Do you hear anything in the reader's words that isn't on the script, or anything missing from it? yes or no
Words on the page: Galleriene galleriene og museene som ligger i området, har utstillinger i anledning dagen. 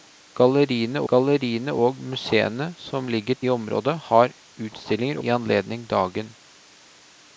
no